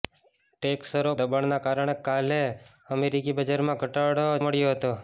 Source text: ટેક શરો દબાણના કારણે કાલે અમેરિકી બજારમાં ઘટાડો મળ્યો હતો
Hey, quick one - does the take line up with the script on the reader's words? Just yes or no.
yes